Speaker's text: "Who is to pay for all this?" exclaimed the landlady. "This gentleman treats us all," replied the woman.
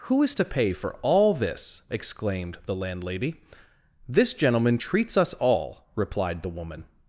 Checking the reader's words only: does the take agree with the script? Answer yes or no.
yes